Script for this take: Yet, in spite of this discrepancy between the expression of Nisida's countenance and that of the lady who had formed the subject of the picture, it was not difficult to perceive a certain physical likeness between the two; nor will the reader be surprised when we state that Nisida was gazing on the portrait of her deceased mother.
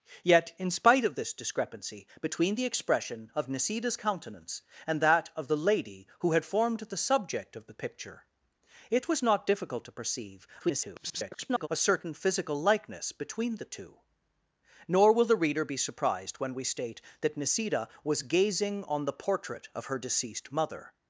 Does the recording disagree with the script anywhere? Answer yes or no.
yes